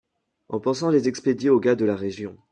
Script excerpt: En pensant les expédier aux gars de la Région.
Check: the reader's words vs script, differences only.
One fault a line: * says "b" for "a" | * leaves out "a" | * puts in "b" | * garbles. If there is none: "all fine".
all fine